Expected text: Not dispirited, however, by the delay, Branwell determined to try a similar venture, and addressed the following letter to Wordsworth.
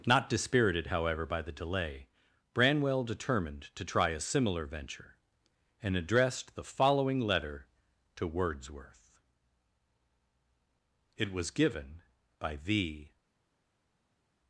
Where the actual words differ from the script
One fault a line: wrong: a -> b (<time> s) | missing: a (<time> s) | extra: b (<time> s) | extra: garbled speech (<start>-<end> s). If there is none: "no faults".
extra: It was given by the (11.2 s)